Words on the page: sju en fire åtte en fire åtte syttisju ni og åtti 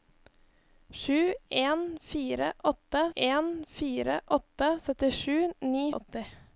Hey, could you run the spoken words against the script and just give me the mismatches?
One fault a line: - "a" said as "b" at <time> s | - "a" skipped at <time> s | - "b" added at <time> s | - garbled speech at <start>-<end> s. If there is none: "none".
none